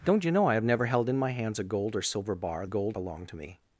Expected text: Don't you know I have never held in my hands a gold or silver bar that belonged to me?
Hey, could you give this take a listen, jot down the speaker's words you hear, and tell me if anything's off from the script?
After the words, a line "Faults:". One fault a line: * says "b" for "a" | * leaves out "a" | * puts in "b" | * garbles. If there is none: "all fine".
Don't you know I have never held in my hands a gold or silver bar gold belonged to me?
Faults:
* says "gold" for "that"